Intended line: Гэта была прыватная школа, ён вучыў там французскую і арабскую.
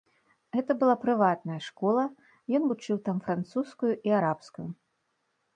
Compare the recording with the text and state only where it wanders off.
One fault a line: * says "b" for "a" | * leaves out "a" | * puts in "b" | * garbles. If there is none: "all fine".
all fine